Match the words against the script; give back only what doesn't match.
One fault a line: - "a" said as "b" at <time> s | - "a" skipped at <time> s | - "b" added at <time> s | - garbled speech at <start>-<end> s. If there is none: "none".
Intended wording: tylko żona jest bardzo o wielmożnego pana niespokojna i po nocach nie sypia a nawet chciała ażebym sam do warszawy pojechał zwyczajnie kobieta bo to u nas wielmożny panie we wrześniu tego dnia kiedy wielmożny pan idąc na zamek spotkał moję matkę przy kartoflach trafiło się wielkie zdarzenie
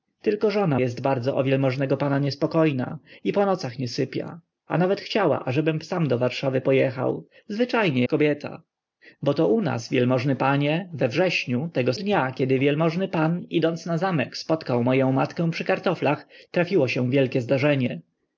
none